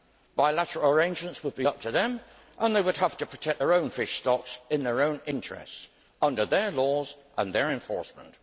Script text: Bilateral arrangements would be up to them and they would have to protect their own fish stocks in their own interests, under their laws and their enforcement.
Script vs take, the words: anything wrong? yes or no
no